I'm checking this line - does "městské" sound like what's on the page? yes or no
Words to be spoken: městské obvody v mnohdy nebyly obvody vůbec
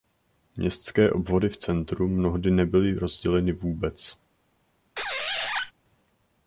yes